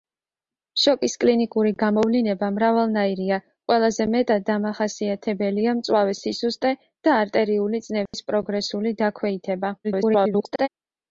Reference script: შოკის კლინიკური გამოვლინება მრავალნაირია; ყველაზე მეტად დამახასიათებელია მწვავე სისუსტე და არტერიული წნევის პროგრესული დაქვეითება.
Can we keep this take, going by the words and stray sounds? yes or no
no